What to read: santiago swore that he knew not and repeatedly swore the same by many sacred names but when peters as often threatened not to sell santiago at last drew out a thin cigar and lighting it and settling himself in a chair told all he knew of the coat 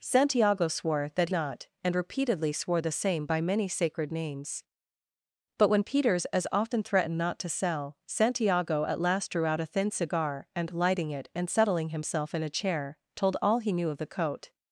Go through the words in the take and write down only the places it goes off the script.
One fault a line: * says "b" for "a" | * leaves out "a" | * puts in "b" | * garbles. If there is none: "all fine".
* leaves out "he knew"